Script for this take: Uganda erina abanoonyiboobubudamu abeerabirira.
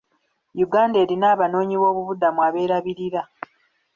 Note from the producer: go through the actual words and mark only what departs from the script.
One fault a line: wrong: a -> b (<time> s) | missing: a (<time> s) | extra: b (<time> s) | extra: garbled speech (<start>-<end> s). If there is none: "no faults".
no faults